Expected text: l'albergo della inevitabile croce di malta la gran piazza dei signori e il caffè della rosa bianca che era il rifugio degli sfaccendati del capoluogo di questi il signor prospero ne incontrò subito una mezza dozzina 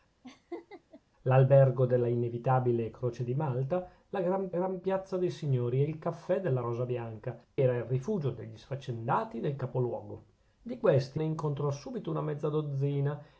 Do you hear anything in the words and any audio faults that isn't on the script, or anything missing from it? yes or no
yes